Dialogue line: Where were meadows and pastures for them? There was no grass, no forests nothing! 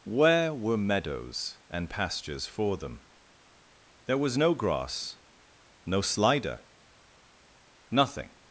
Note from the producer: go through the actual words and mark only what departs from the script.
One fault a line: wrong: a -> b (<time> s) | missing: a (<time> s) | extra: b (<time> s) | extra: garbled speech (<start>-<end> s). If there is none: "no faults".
wrong: forests -> slider (6.0 s)